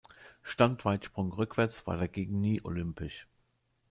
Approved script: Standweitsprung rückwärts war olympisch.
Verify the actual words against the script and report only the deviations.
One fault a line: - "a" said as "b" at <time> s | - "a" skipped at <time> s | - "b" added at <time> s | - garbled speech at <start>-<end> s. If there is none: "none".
- "dagegen nie" added at 1.9 s